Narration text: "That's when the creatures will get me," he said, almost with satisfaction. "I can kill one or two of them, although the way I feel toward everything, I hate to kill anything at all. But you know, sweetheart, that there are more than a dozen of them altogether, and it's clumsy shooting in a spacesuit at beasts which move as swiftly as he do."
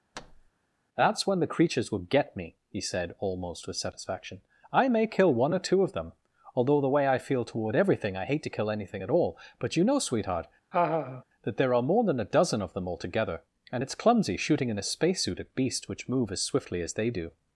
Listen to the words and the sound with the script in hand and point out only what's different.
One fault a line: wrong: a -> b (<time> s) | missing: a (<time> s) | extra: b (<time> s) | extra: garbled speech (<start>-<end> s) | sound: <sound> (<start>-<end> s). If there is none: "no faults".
sound: thud (0.1-0.5 s)
wrong: can -> may (4.9 s)
sound: laugh (10.7-11.2 s)
wrong: he -> they (16.9 s)